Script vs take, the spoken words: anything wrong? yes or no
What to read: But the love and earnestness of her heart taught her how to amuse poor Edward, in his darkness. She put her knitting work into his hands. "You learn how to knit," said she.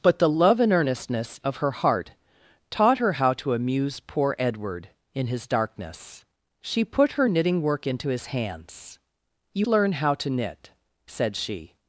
no